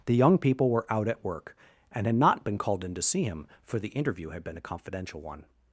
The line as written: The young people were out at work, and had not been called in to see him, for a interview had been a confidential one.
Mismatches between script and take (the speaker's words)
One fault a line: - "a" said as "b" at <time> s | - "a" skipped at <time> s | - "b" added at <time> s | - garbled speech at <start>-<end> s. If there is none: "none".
- "a" said as "the" at 3.8 s